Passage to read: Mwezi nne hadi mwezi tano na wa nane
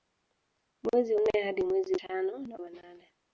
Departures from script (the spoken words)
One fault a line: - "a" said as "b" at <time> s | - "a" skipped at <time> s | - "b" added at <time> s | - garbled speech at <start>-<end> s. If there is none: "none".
none